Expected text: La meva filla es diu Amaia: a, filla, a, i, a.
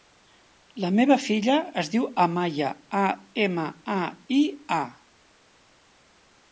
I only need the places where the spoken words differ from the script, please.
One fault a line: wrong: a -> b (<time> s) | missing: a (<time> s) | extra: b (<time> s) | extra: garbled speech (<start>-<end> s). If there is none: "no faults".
wrong: filla -> ema (3.5 s)